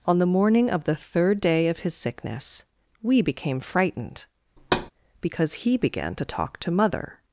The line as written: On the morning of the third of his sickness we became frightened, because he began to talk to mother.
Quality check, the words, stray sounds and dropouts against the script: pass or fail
fail